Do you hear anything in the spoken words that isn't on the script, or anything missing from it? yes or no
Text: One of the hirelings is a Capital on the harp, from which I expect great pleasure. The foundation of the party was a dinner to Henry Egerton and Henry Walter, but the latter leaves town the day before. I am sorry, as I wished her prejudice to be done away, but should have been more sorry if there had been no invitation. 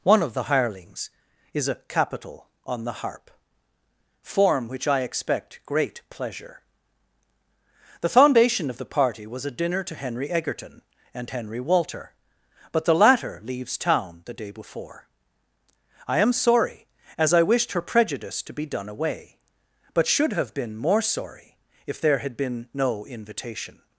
yes